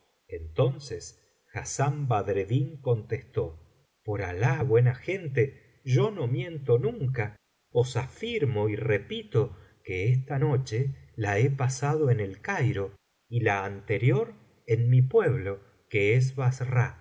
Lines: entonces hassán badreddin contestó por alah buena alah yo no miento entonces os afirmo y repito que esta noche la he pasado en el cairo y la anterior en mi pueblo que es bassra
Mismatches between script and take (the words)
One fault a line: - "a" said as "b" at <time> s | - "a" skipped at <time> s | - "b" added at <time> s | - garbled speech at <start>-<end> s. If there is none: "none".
- "alah" said as "gente" at 4.9 s
- "entonces" said as "nunca" at 6.8 s